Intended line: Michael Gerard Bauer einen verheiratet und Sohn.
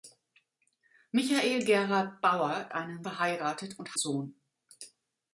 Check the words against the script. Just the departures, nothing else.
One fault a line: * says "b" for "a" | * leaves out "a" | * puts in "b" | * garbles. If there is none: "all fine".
all fine